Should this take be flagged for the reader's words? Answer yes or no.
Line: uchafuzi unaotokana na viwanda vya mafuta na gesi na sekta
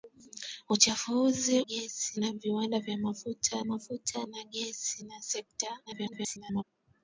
yes